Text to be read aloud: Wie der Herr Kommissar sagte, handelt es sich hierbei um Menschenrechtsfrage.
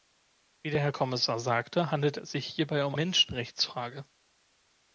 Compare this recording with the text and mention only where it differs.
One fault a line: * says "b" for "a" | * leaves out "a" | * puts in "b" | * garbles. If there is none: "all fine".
all fine